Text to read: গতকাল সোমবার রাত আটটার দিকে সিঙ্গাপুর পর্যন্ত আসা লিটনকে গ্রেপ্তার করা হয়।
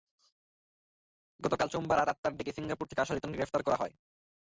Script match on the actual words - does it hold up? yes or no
no